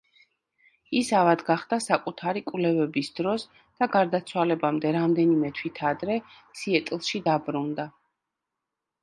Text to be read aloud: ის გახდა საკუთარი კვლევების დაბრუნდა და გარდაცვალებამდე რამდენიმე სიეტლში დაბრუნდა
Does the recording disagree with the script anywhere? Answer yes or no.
yes